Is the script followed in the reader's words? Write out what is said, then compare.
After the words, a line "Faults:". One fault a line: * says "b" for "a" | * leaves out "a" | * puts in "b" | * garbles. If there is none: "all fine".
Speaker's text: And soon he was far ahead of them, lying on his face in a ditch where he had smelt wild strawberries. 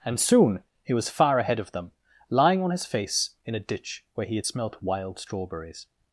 And soon he was far ahead of them, lying on his face in a ditch where he had smelt wild strawberries.
Faults:
all fine